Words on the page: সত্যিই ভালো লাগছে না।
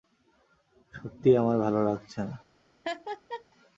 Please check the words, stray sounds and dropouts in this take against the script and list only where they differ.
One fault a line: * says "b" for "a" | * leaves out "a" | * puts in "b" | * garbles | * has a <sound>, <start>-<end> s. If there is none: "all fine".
* puts in "আমার"
* has a laugh, 2.8-3.4 s